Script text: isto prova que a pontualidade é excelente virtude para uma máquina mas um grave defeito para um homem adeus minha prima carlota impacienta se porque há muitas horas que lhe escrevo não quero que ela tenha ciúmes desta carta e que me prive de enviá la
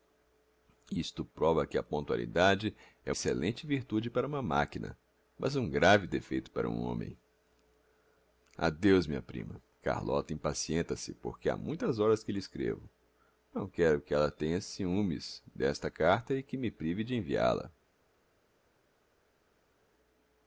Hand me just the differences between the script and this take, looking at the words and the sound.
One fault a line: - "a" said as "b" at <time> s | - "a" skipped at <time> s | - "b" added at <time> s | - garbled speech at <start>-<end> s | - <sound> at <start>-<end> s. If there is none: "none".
none